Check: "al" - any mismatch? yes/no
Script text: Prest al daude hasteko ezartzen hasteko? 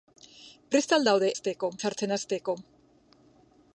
no